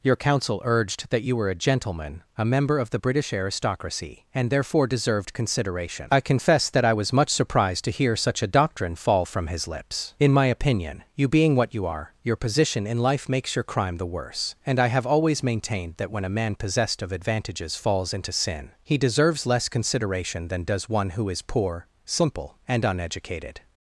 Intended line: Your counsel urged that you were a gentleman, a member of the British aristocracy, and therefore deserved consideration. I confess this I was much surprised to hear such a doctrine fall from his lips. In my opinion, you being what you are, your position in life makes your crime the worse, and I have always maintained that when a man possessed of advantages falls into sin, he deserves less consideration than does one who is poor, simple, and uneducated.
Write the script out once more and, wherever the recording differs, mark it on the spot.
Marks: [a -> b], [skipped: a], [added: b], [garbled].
Your counsel urged that you were a gentleman, a member of the British aristocracy, and therefore deserved consideration. I confess [this -> that] I was much surprised to hear such a doctrine fall from his lips. In my opinion, you being what you are, your position in life makes your crime the worse, and I have always maintained that when a man possessed of advantages falls into sin, he deserves less consideration than does one who is poor, simple, and uneducated.